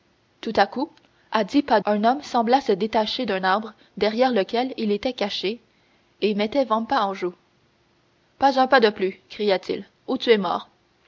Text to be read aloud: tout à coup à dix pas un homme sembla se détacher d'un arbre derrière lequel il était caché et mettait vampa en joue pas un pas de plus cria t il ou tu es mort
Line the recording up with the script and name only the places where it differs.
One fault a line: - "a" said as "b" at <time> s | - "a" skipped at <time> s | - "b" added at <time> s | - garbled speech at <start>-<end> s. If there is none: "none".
none